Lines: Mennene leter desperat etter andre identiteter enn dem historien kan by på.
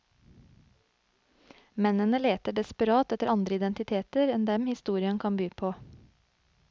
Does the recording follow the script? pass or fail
pass